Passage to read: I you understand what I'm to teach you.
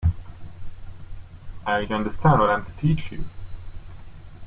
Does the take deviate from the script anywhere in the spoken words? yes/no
no